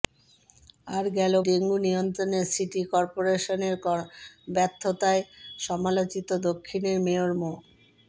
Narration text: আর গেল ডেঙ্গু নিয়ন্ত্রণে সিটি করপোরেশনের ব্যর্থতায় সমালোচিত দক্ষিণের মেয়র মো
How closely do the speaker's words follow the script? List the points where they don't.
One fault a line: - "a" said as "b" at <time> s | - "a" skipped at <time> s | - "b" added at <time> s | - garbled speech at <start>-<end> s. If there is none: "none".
none